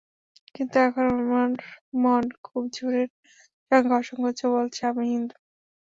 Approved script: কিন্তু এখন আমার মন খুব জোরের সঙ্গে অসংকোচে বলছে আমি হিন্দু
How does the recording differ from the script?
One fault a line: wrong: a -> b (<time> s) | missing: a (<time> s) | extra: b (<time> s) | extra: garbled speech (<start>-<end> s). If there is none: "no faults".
no faults